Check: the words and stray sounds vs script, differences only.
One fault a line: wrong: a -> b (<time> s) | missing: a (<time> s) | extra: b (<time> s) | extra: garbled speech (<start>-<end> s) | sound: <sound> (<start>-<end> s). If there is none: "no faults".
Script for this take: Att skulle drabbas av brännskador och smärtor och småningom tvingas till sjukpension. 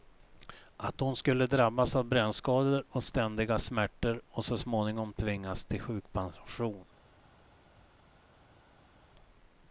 extra: hon (1.0 s)
extra: ständiga (3.0 s)
extra: så (4.5 s)